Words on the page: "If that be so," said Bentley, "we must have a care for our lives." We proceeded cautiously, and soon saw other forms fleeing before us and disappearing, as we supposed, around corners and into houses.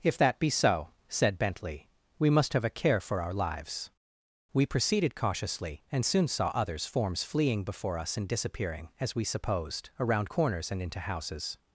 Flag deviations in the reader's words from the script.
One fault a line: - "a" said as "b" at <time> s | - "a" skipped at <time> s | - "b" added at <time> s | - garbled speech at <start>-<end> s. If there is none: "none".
- "other" said as "others" at 6.5 s